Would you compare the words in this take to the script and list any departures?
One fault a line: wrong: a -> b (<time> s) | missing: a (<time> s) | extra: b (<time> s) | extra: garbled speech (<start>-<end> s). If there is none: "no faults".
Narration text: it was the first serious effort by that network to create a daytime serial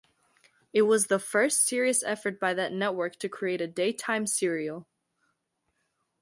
no faults